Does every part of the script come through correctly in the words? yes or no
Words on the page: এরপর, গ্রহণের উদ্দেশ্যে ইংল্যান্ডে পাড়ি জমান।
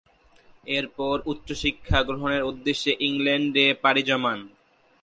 no